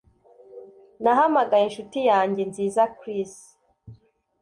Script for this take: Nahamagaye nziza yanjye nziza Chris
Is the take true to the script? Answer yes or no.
no